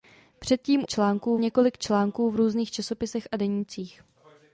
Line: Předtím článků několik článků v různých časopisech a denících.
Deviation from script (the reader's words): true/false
false